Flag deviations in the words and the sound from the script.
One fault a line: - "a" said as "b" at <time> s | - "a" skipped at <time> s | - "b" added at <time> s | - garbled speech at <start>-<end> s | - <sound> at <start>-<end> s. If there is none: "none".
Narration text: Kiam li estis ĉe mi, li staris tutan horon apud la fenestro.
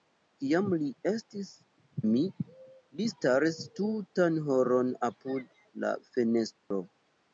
- "ĉe" skipped at 1.5 s
- dropout at 6.6-6.7 s